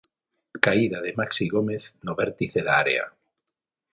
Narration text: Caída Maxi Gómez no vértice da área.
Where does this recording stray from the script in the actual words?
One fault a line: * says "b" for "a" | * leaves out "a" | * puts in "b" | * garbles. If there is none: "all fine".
* puts in "de"